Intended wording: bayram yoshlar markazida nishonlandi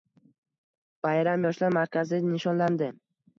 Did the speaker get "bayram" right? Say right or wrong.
right